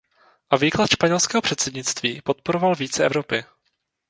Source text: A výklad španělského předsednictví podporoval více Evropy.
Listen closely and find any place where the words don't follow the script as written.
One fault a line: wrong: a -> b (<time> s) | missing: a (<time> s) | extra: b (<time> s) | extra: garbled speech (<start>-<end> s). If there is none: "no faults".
no faults